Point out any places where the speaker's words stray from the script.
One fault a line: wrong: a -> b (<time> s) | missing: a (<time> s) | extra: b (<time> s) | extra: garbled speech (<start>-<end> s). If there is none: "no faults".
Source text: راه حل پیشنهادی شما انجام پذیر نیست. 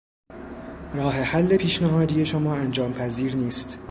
no faults